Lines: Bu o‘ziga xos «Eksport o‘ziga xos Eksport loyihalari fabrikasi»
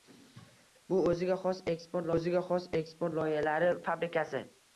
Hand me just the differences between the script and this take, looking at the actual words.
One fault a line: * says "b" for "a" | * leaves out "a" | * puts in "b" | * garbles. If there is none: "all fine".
all fine